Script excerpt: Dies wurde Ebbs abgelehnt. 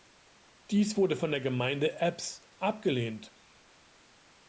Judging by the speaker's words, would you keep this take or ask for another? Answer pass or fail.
fail